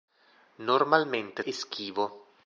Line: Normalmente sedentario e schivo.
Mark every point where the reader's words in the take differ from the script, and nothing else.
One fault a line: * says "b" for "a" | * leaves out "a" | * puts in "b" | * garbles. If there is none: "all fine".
* leaves out "sedentario"